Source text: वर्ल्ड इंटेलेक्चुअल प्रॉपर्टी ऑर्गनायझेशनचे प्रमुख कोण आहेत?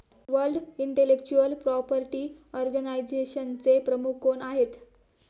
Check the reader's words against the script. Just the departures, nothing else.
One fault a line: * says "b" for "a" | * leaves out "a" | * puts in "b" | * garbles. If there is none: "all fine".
all fine